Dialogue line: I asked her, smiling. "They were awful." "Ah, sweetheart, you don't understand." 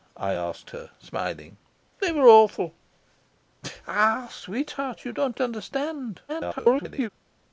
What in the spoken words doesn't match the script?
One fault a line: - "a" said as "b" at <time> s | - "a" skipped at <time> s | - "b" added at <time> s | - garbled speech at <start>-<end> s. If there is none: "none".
- garbled speech at 6.3-7.1 s